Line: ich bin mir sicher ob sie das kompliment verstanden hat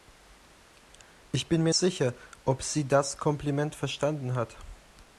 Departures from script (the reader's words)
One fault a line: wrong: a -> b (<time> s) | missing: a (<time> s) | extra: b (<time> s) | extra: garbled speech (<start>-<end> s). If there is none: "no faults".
no faults